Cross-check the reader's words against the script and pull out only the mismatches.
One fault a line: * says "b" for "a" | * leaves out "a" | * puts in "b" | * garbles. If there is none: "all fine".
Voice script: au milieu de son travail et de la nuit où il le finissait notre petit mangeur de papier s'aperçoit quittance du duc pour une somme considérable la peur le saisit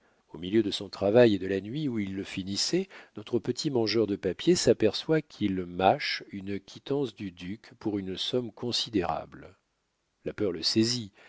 * puts in "qu'il mâche une"